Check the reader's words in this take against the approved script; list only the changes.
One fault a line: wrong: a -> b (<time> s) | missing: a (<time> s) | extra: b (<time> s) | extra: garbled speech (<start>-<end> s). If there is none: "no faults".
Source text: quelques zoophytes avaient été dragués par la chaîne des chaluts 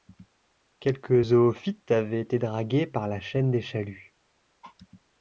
no faults